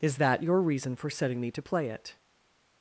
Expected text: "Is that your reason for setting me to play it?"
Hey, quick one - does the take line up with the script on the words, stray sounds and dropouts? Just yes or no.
yes